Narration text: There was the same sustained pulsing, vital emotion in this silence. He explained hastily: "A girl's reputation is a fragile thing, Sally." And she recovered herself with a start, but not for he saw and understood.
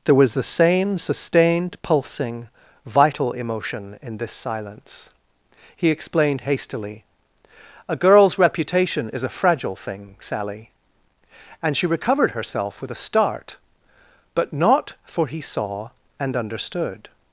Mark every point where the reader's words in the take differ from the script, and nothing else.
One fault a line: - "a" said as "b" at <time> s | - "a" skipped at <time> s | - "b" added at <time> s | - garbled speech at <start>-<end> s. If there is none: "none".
none